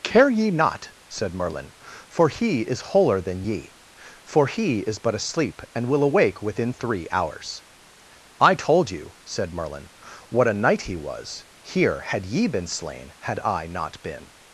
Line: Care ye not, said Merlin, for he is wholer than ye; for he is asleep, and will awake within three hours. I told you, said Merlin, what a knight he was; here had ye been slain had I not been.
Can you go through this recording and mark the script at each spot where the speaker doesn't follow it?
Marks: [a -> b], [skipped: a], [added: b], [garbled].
Care ye not, said Merlin, for he is wholer than ye; for he is [added: but] asleep, and will awake within three hours. I told you, said Merlin, what a knight he was; here had ye been slain had I not been.